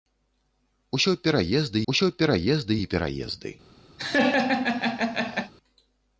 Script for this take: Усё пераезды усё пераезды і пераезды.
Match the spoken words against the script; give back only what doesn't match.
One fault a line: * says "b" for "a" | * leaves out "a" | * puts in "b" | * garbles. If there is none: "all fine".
all fine